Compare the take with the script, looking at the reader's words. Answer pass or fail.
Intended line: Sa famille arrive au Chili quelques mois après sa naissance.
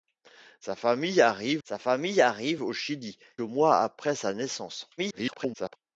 fail